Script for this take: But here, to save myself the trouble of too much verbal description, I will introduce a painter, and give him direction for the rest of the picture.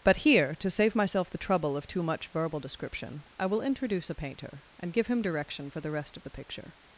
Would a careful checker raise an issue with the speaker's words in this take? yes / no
no